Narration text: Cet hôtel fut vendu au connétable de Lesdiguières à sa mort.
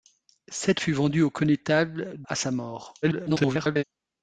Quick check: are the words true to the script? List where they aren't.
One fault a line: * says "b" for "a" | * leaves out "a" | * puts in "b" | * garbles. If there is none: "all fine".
* leaves out "hôtel"
* leaves out "de Lesdiguières"
* garbles